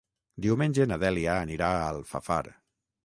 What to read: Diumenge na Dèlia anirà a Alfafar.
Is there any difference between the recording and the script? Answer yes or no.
no